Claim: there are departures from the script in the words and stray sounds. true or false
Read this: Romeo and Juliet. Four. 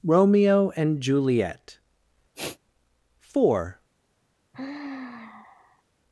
true